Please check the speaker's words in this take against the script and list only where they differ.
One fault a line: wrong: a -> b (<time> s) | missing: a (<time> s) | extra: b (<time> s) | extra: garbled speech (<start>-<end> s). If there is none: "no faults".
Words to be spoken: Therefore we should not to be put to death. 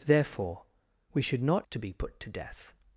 no faults